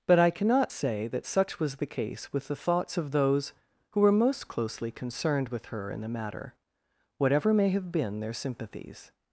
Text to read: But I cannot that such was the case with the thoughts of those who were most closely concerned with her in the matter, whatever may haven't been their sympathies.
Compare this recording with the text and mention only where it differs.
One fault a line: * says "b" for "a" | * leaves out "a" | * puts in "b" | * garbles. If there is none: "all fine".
* puts in "say"
* says "have" for "haven't"